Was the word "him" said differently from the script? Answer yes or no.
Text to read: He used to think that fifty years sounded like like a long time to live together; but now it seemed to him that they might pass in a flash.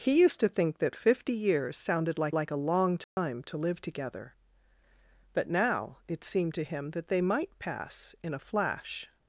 no